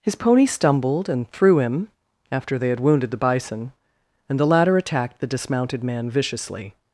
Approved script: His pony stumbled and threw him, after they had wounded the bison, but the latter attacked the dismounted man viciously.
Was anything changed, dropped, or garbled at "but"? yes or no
yes